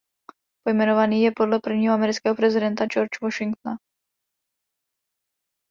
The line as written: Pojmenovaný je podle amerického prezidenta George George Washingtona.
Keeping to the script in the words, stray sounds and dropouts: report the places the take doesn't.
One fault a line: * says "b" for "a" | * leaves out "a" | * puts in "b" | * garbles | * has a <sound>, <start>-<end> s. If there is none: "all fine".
* puts in "prvního"
* leaves out "George"